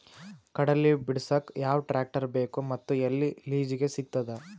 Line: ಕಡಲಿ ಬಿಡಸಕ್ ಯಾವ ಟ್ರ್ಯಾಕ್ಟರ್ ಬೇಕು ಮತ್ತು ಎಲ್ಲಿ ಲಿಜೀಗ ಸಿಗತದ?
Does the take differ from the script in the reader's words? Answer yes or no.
no